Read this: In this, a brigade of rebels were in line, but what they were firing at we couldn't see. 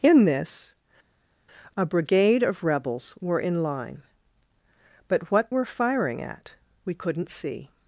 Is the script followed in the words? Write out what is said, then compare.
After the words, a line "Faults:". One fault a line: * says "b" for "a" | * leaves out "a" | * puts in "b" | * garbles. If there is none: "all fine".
In this, a brigade of rebels were in line, but what were firing at we couldn't see.
Faults:
* leaves out "they"